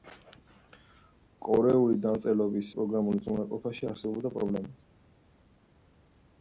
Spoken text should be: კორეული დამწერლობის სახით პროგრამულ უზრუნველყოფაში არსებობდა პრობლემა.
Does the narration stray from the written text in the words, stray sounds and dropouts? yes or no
yes